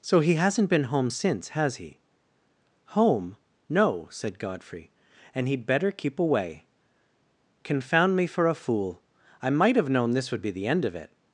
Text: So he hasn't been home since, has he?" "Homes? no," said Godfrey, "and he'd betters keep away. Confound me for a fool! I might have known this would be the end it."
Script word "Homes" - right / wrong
wrong